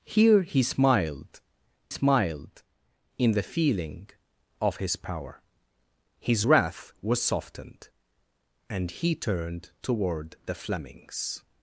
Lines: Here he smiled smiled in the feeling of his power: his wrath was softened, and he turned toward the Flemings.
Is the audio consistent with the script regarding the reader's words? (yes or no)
yes